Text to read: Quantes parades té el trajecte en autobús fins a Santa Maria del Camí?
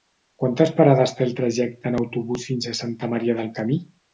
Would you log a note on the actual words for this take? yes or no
no